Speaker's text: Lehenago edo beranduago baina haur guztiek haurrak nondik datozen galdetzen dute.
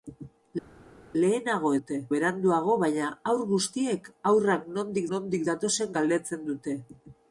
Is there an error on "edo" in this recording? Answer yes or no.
yes